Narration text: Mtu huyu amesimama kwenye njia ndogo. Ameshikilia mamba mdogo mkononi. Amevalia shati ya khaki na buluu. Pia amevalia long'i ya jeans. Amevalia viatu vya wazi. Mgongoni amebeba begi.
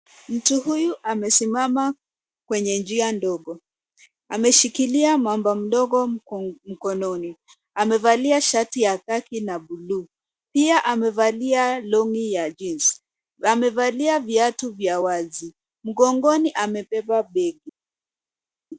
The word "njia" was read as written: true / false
true